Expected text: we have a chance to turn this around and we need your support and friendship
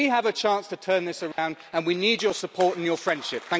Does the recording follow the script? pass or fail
fail